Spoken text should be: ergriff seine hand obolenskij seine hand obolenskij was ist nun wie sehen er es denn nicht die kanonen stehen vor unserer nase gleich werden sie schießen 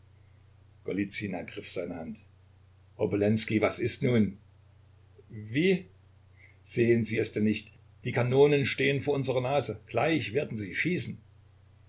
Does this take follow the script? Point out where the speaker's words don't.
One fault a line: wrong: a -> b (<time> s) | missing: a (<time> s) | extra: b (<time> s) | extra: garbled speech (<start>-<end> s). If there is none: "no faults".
missing: seine hand obolenskij (3.6 s)
wrong: er -> sie (7.0 s)